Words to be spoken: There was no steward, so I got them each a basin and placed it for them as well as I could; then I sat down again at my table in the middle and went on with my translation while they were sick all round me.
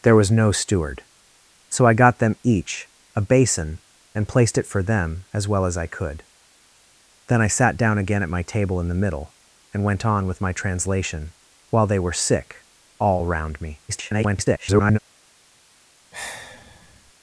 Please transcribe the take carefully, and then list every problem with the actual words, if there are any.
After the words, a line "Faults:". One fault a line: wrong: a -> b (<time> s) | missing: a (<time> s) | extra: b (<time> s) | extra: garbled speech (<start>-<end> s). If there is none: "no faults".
There was no steward, so I got them each a basin and placed it for them as well as I could; then I sat down again at my table in the middle and went on with my translation while they were sick all round me. [garbled]
Faults:
extra: garbled speech (13.9-15.0 s)